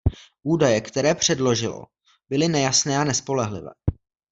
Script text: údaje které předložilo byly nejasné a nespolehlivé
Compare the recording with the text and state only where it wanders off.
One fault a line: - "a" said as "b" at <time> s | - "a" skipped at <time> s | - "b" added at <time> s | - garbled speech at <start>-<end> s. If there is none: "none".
none